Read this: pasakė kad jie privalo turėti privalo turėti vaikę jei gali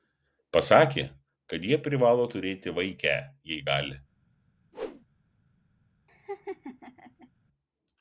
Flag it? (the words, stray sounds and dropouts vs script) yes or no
yes